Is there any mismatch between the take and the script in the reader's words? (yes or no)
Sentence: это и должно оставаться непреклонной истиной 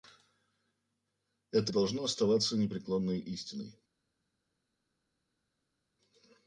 no